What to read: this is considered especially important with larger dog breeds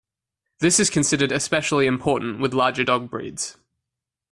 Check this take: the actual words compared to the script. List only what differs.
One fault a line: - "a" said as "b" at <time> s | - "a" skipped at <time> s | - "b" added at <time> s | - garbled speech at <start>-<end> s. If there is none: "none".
none